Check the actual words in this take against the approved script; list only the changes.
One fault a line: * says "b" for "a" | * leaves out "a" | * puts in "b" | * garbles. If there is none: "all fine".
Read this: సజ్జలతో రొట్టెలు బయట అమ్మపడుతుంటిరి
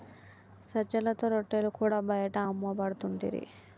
* puts in "కూడా"